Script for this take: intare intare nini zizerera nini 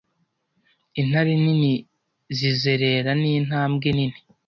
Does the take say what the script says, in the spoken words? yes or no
no